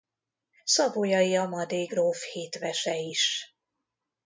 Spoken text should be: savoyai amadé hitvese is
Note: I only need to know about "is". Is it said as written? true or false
true